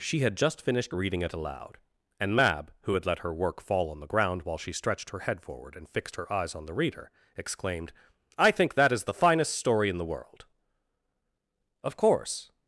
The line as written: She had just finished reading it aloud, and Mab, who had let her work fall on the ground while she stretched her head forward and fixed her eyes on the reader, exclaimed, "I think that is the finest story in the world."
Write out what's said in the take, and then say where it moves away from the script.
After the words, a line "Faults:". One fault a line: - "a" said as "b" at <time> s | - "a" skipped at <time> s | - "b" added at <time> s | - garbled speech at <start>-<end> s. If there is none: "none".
She had just finished reading it aloud, and Mab, who had let her work fall on the ground while she stretched her head forward and fixed her eyes on the reader, exclaimed, "I think that is the finest story in the world." "Of course
Faults:
- "Of course" added at 11.8 s